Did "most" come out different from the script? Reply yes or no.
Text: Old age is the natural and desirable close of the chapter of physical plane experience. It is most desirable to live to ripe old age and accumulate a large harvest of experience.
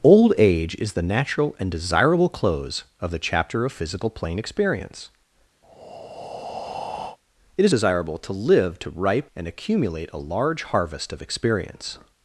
yes